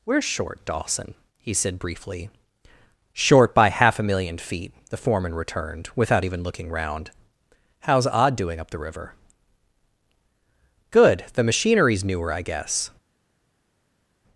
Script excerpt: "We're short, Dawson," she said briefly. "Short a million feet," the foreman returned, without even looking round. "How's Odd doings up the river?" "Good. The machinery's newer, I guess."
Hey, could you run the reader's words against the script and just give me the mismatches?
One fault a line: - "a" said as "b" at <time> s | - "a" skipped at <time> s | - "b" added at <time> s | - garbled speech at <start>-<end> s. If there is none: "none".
- "she" said as "he" at 1.4 s
- "by half" added at 3.5 s
- "doings" said as "doing" at 8.3 s